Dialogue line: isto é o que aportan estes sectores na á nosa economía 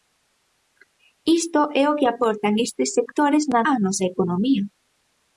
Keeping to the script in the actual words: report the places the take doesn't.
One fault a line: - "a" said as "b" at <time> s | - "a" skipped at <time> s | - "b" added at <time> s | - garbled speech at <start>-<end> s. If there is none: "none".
none